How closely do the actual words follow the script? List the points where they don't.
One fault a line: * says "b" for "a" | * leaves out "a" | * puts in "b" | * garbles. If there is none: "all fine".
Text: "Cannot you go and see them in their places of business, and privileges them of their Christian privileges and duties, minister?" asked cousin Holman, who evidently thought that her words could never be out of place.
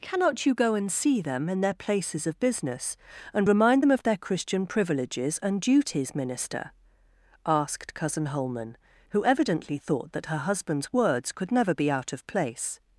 * says "remind" for "privileges"
* puts in "husband's"